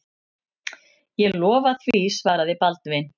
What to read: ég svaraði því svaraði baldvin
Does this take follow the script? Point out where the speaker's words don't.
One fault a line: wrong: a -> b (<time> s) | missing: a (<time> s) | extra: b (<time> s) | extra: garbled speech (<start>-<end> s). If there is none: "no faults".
wrong: svaraði -> lofa (1.4 s)